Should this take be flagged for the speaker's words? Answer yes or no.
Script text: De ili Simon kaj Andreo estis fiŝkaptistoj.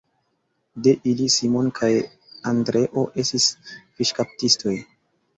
no